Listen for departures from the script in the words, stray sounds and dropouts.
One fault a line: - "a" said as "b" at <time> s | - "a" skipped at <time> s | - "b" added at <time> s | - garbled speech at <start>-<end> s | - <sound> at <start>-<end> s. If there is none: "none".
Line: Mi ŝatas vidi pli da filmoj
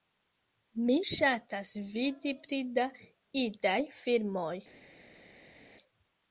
- "idaj" added at 3.5 s